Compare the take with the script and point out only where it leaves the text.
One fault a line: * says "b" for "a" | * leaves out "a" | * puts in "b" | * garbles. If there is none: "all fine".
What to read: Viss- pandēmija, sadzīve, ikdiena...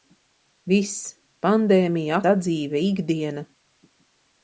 all fine